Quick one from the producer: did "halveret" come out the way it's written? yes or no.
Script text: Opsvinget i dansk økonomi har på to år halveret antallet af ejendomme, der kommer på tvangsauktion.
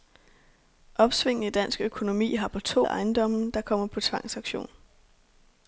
no